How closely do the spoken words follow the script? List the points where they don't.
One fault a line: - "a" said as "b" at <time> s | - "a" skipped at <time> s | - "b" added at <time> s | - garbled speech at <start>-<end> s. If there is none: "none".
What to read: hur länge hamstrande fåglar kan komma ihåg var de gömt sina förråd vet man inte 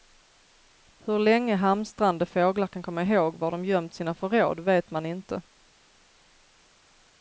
none